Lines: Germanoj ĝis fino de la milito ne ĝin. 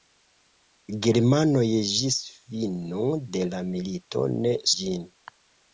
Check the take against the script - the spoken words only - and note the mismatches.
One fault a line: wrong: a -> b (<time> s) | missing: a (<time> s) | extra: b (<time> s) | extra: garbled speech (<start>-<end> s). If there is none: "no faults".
no faults